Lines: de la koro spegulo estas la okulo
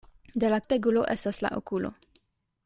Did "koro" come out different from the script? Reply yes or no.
yes